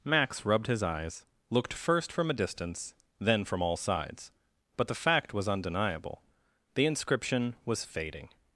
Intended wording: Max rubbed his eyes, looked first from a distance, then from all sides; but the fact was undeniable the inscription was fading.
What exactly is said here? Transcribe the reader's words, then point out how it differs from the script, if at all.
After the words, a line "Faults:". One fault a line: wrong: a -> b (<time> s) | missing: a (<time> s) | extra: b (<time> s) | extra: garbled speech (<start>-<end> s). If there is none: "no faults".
Max rubbed his eyes, looked first from a distance, then from all sides; but the fact was undeniable the inscription was fading.
Faults:
no faults